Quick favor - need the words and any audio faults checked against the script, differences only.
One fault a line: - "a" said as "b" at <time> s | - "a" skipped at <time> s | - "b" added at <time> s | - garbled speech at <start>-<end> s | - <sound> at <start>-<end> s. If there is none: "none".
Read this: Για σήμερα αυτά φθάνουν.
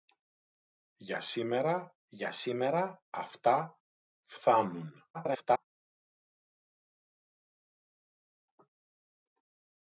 - "για σήμερα" added at 2.1 s
- garbled speech at 5.1-5.7 s